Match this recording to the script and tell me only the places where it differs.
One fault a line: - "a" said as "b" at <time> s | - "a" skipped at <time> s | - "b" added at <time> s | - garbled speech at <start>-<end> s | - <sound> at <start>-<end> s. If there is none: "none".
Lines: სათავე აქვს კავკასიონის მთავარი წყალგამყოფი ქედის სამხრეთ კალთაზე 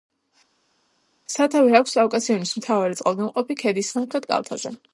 none